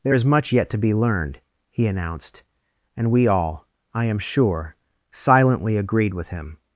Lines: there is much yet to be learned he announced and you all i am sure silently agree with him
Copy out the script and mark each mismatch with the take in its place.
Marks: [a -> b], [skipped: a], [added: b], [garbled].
there is much yet to be learned he announced and [you -> we] all i am sure silently [agree -> agreed] with him